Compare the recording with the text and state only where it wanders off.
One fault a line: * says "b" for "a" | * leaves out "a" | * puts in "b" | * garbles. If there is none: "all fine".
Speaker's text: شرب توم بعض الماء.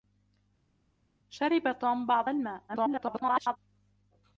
* garbles